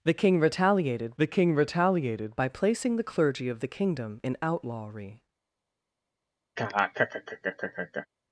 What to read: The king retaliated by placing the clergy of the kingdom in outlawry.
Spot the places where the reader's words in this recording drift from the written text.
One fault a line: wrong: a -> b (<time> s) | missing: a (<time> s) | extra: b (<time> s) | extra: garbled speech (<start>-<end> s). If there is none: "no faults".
extra: the king retaliated (1.2 s)